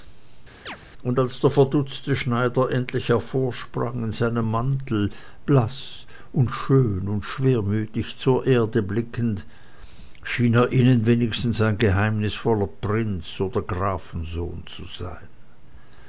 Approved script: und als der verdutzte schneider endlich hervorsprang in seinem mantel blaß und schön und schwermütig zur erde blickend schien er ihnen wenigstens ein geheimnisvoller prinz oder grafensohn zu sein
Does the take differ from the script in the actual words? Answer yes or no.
no